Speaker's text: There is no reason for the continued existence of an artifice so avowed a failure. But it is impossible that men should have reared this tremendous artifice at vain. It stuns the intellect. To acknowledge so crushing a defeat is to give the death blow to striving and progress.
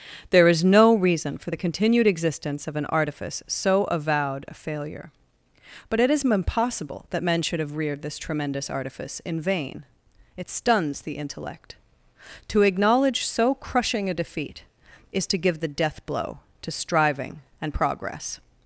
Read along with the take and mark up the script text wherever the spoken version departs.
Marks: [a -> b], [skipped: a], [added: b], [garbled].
There is no reason for the continued existence of an artifice so avowed a failure. But it is impossible that men should have reared this tremendous artifice [at -> in] vain. It stuns the intellect. To acknowledge so crushing a defeat is to give the death blow to striving and progress.